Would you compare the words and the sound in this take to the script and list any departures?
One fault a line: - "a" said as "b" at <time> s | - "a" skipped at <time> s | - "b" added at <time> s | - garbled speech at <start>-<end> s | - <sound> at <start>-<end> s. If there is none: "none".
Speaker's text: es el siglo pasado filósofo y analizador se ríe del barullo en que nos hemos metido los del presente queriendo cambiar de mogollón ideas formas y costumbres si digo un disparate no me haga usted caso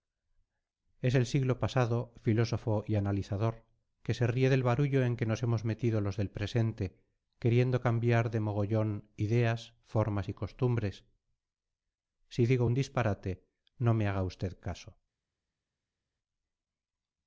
- "que" added at 4.0 s